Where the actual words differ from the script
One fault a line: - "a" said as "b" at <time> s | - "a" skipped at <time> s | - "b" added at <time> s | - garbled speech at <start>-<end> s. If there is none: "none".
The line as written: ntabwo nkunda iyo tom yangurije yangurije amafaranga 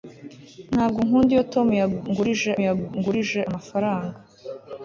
none